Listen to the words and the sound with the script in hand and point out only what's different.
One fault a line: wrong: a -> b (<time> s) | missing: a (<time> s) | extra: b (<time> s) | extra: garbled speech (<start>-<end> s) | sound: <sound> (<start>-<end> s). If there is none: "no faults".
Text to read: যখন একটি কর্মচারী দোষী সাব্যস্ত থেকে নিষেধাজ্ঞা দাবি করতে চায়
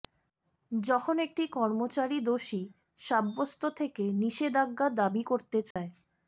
sound: dropout (5.7-5.8 s)